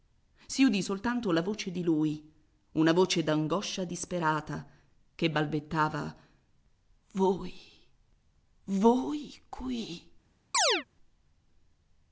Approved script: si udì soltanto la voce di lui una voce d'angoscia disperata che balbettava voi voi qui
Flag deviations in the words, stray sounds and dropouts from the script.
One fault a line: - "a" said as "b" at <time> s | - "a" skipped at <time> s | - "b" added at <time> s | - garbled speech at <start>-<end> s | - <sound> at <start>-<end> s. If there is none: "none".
- chirp at 10.5-10.8 s